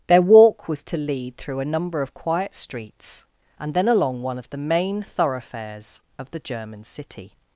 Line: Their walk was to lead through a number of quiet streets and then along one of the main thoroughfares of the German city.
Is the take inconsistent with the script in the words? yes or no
no